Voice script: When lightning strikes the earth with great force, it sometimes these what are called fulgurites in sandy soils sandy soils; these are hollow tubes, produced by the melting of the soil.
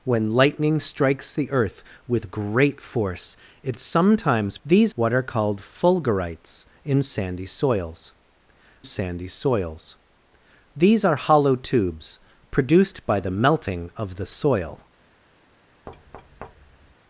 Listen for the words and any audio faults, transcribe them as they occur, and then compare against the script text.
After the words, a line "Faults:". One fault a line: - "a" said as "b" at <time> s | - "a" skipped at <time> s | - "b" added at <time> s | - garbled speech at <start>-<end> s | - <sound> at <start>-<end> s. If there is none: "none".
When lightning strikes the earth with great force, it sometimes these what are called fulgurites in sandy soils sandy soils; these are hollow tubes, produced by the melting of the soil.
Faults:
- thud at 15.9-17.0 s